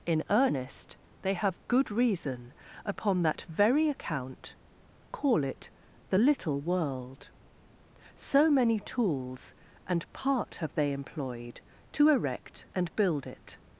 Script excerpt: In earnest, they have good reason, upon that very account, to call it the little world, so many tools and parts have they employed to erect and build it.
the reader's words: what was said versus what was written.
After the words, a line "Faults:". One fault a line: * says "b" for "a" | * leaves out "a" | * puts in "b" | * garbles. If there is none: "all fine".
In earnest, they have good reason, upon that very account, call it the little world, so many tools and part have they employed to erect and build it.
Faults:
* leaves out "to"
* says "part" for "parts"